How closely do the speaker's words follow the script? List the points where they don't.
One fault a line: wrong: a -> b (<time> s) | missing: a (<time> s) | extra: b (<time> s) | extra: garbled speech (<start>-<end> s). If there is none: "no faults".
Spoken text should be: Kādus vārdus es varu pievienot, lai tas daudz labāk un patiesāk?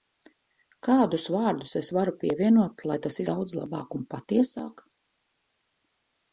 no faults